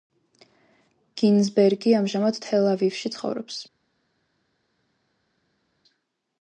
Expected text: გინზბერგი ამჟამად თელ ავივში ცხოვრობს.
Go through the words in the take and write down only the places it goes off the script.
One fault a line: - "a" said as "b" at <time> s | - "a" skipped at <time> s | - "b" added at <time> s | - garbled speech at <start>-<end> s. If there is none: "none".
none